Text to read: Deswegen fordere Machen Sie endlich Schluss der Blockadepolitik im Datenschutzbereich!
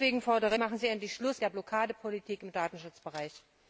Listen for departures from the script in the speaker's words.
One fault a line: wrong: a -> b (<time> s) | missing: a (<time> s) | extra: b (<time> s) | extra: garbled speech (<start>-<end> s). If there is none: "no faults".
no faults